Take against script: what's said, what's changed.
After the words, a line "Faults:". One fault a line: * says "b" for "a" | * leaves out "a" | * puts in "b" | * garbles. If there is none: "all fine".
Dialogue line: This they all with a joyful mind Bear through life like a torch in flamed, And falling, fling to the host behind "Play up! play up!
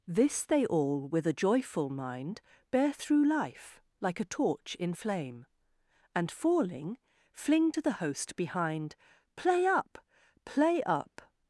This they all with a joyful mind Bear through life like a torch in flame, And falling, fling to the host behind "Play up! play up!
Faults:
* says "flame" for "flamed"